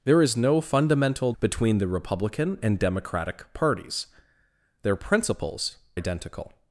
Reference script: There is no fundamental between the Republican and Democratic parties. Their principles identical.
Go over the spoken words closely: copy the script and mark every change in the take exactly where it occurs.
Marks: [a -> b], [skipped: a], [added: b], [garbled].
There is no fundamental between the Republican and Democratic parties. Their principles identical.